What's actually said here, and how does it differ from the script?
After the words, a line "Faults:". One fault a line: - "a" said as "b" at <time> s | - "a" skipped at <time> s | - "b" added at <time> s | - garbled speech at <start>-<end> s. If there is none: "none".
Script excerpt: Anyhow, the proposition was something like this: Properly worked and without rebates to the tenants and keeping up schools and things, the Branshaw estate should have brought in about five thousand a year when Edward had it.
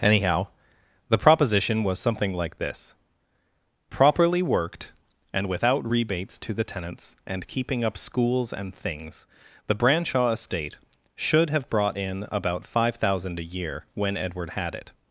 Anyhow, the proposition was something like this: Properly worked and without rebates to the tenants and keeping up schools and things, the Branshaw estate should have brought in about five thousand a year when Edward had it.
Faults:
none